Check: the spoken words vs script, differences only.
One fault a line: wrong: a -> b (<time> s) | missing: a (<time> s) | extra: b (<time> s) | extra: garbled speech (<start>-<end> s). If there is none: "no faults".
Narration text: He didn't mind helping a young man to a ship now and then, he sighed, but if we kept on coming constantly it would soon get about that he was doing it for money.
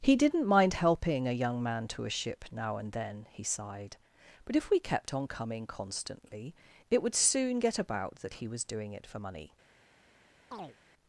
no faults